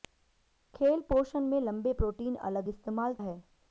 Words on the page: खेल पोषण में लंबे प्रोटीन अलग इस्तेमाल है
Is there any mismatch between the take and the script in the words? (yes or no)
no